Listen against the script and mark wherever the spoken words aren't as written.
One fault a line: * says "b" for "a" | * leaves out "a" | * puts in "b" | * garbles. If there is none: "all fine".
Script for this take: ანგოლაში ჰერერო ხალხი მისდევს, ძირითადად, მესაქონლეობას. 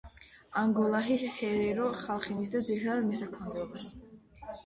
all fine